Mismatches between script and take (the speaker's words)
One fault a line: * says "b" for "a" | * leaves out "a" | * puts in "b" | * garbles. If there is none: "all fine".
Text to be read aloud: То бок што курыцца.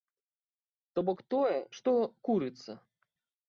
* puts in "тое"